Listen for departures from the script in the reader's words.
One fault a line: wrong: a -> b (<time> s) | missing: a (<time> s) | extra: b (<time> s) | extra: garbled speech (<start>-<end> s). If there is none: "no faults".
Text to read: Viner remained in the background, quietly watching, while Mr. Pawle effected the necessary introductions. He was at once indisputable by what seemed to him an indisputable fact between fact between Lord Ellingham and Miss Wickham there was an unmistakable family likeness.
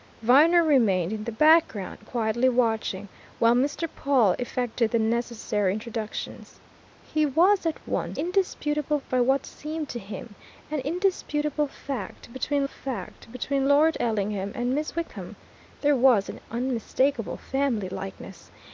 no faults